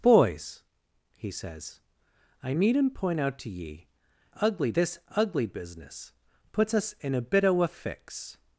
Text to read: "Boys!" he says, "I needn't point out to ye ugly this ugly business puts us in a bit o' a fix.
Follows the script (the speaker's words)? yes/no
yes